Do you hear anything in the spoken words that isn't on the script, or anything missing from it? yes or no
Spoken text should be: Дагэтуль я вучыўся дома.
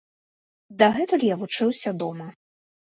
no